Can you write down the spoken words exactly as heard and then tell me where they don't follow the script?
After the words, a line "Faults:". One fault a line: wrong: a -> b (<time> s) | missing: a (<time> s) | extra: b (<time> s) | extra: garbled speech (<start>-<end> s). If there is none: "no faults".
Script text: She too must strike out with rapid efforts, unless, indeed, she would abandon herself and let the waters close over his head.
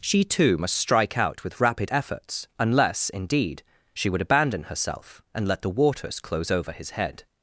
She too must strike out with rapid efforts, unless, indeed, she would abandon herself and let the waters close over his head.
Faults:
no faults